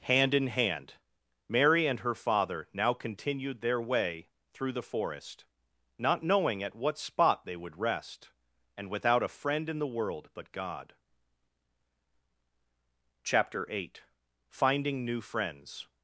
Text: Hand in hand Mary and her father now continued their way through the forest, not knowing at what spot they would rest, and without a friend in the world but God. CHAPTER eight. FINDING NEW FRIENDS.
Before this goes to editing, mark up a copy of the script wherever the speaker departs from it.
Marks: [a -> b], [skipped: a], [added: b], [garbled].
Hand in hand Mary and her father now continued their way through the forest, not knowing at what spot they would rest, and without a friend in the world but God. CHAPTER eight. FINDING NEW FRIENDS.